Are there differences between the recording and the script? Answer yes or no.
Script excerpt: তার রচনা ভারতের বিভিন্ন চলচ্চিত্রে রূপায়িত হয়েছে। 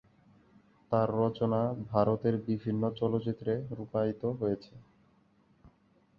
no